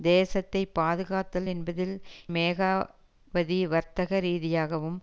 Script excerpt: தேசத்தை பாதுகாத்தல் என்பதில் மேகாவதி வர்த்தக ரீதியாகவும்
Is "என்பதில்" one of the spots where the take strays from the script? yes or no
no